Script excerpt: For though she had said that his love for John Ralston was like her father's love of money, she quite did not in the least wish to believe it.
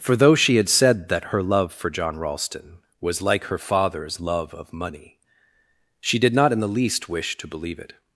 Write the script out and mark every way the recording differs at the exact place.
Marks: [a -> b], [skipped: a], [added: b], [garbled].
For though she had said that [his -> her] love for John Ralston was like her father's love of money, she [skipped: quite] did not in the least wish to believe it.